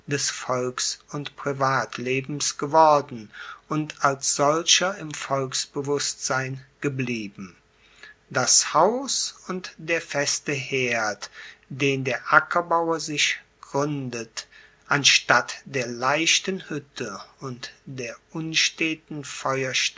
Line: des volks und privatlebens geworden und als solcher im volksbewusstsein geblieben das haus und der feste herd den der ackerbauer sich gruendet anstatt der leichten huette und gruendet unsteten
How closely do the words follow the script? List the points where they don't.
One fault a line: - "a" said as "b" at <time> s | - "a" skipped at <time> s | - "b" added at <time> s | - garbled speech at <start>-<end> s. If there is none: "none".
- "gruendet" said as "der" at 17.8 s